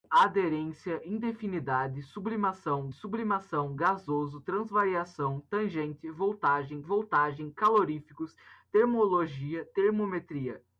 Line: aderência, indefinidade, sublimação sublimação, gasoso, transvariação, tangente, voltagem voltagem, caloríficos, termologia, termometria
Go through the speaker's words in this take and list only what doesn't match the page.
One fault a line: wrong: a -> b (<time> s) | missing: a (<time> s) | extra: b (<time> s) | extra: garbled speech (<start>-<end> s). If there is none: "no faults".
no faults